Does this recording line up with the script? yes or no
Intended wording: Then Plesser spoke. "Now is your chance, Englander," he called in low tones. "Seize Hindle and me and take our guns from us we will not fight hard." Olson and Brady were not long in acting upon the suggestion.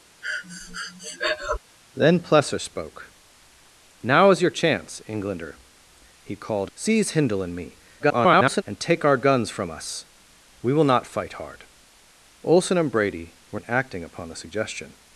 no